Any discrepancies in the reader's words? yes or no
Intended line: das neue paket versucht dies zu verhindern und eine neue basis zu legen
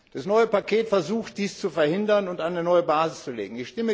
no